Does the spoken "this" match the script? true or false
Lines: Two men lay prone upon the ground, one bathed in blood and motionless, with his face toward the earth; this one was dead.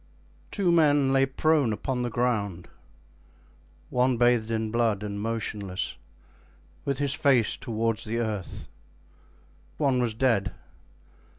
false